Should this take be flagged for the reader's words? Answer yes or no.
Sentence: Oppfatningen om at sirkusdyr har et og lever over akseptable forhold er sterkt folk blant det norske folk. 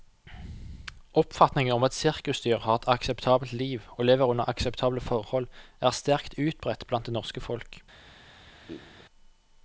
yes